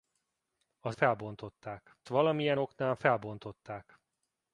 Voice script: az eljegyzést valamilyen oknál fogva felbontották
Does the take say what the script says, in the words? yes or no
no